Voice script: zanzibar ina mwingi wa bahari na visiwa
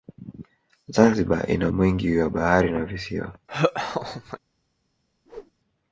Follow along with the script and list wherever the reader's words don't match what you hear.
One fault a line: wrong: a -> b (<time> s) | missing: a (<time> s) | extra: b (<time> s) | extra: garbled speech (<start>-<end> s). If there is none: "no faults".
no faults